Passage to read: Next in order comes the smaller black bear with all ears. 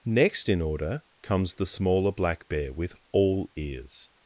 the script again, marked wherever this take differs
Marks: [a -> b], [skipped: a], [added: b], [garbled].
Next in order comes the smaller black bear with all ears.